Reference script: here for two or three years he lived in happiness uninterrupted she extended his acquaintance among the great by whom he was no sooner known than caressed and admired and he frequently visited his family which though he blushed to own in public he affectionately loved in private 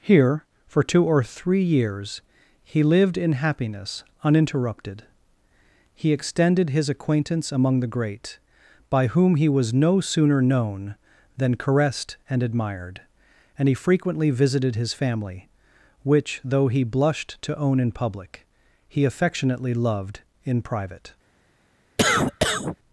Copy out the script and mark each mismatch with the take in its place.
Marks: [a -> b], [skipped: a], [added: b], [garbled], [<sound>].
here for two or three years he lived in happiness uninterrupted [she -> he] extended his acquaintance among the great by whom he was no sooner known than caressed and admired and he frequently visited his family which though he blushed to own in public he affectionately loved in private [cough]